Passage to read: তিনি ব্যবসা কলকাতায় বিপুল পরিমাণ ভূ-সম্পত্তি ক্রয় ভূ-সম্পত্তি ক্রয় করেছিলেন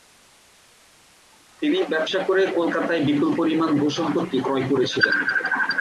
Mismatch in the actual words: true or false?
true